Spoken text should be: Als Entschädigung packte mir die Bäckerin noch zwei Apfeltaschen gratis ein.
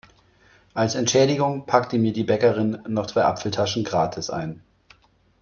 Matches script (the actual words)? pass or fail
pass